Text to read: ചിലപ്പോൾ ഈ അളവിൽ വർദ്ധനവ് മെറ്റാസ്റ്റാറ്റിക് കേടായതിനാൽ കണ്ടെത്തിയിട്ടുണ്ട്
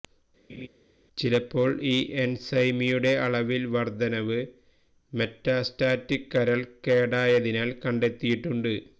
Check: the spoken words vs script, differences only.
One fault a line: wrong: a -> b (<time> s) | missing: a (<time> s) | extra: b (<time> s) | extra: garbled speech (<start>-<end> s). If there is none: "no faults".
extra: എൻസൈമിയുടെ (2.1 s)
extra: കരൾ (6.3 s)